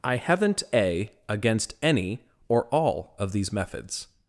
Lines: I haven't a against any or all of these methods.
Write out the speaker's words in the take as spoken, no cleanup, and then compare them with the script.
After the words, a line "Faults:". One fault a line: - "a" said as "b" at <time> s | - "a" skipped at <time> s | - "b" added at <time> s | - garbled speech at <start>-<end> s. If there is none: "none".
I haven't a against any or all of these methods.
Faults:
none